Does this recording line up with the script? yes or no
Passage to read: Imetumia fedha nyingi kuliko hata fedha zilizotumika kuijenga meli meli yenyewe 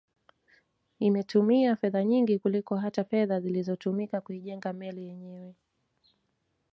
no